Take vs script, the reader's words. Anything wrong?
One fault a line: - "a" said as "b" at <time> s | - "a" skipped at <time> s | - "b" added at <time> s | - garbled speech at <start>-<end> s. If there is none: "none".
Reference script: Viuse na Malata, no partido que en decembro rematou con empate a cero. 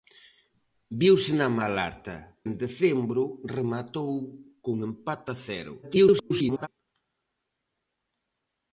- "no partido que" skipped at 2.2 s
- garbled speech at 5.8-6.7 s